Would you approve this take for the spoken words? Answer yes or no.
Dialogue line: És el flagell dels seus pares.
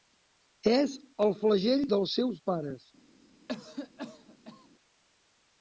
yes